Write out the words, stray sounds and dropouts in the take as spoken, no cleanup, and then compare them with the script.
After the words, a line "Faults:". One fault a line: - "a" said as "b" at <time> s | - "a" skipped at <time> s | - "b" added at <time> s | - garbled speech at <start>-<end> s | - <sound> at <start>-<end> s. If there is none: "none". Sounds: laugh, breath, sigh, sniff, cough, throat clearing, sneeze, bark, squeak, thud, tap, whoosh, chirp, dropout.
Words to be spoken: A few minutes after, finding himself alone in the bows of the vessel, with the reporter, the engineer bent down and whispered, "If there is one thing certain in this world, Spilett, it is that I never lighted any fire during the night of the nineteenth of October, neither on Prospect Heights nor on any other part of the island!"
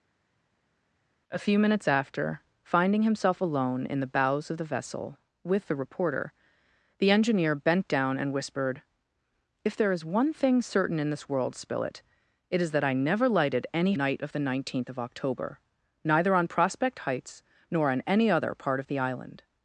A few minutes after, finding himself alone in the bows of the vessel, with the reporter, the engineer bent down and whispered, "If there is one thing certain in this world, Spilett, it is that I never lighted any night of the nineteenth of October, neither on Prospect Heights nor on any other part of the island!"
Faults:
- "fire during the" skipped at 14.0 s